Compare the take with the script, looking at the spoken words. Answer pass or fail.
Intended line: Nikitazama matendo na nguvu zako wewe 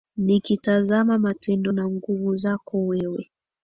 pass